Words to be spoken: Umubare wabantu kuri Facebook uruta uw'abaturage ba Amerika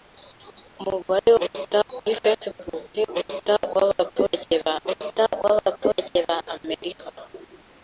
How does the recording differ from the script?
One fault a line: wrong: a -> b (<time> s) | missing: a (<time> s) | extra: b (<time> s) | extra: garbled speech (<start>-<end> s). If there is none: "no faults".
wrong: wabantu -> uruta (1.4 s)
extra: uruta uw'abaturage ba (4.9 s)